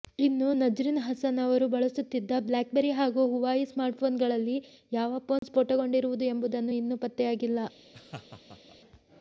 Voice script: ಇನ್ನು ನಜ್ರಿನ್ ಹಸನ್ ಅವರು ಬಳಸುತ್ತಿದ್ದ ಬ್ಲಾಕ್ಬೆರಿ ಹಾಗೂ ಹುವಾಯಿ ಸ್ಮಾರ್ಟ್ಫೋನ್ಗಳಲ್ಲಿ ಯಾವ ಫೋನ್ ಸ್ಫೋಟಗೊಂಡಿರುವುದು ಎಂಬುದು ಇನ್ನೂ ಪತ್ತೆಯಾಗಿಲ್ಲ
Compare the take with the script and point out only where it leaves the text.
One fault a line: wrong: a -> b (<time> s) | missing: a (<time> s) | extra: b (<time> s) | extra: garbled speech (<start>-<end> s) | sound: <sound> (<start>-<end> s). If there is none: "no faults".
sound: dropout (5.4-5.4 s)
sound: laugh (7.9-8.8 s)